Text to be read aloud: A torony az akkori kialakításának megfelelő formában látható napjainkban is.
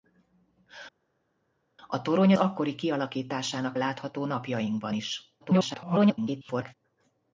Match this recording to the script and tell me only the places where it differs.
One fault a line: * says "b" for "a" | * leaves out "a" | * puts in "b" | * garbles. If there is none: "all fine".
* leaves out "az"
* leaves out "megfelelő formában"
* garbles